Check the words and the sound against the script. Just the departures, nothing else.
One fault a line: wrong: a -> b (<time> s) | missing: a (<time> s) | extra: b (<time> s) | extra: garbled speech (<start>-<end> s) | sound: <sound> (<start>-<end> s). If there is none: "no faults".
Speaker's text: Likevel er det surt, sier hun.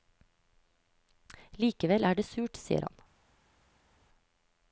wrong: hun -> han (2.9 s)